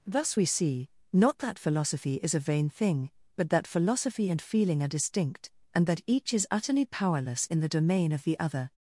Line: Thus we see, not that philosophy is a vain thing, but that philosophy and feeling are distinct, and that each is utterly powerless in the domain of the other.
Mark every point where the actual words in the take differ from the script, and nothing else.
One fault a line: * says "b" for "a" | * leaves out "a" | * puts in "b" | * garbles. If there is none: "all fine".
all fine